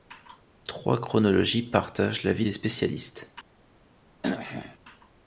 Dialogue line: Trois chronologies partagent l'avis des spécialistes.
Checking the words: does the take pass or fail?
pass